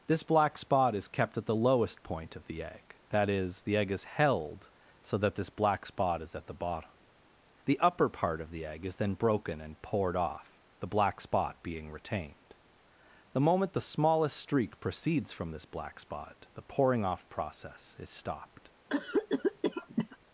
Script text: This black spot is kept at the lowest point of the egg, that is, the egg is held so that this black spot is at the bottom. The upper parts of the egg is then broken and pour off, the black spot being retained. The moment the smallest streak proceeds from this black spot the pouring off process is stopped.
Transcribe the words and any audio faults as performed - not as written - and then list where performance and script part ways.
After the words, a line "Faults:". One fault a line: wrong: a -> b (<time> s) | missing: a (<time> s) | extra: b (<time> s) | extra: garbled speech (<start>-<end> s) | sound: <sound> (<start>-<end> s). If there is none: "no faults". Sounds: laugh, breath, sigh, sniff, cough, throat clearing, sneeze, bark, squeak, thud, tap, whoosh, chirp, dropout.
This black spot is kept at the lowest point of the egg, that is, the egg is held so that this black spot is at the bottom. The upper part of the egg is then broken and poured off, the black spot being retained. The moment the smallest streak proceeds from this black spot the pouring off process is stopped.
Faults:
wrong: parts -> part (8.1 s)
wrong: pour -> poured (9.8 s)
sound: cough (18.9-20.2 s)